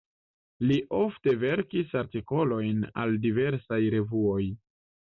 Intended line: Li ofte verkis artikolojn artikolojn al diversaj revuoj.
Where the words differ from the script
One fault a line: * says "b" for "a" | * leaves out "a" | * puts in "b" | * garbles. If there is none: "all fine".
* leaves out "artikolojn"